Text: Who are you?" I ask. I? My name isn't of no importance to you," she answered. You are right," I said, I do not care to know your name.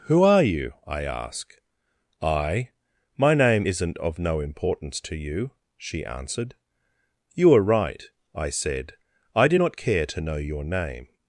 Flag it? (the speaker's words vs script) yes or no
no